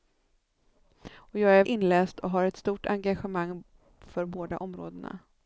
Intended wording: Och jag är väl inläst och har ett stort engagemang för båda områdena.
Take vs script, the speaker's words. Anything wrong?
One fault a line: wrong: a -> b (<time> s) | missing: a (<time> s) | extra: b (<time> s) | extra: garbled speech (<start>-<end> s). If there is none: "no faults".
missing: väl (1.6 s)